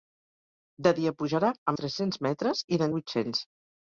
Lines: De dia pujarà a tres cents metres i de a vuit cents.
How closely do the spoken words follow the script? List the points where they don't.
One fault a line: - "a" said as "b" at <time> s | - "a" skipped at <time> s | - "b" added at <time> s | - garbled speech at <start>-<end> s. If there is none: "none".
none